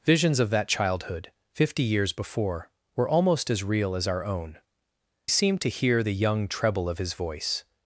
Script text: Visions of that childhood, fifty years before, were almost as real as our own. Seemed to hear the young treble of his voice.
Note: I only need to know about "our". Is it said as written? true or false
true